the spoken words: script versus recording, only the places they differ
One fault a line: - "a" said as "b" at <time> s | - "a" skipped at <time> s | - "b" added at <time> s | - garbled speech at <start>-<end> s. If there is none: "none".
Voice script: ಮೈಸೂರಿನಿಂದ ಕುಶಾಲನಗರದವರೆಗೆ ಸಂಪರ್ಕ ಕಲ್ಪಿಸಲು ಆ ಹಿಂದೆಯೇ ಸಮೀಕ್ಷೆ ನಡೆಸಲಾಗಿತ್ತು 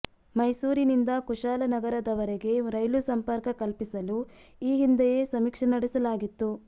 - "ರೈಲು" added at 2.7 s
- "ಆ" said as "ಈ" at 4.6 s